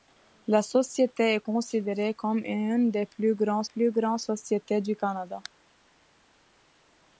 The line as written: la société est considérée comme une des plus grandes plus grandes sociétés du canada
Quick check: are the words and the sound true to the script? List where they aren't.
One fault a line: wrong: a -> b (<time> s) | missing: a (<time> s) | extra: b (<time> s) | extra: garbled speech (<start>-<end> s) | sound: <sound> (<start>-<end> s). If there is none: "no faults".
no faults